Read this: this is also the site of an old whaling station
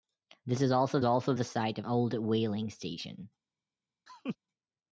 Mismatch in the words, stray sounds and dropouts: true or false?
true